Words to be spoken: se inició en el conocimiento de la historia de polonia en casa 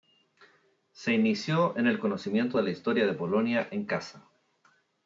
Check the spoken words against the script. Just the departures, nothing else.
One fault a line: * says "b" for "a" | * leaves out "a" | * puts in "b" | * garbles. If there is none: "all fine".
all fine